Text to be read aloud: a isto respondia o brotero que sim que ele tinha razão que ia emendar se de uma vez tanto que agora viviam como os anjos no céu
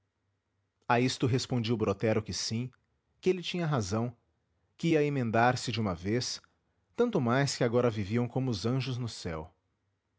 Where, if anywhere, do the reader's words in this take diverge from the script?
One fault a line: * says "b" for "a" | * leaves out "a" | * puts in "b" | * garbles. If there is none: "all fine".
* puts in "mais"